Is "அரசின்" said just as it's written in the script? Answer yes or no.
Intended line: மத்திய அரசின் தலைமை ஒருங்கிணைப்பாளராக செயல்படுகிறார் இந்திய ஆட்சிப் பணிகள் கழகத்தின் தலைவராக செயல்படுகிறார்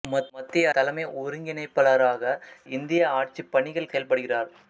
no